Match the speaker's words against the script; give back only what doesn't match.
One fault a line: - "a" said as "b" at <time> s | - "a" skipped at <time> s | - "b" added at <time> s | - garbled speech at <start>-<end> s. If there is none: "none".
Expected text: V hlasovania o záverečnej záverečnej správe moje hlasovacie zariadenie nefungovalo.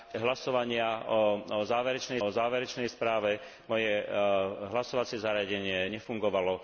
none